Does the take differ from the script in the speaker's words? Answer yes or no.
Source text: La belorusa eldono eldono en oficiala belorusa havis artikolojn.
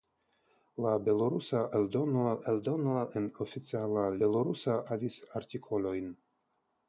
no